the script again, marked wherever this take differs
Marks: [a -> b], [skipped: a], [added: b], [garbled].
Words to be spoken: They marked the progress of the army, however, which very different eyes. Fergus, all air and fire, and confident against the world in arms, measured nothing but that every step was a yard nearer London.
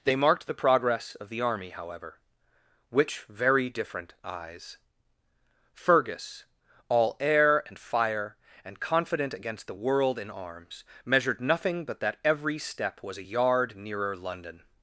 They marked the progress of the army, however, which very different eyes. Fergus, all air and fire, and confident against the world in arms, measured nothing but that every step was a yard nearer London.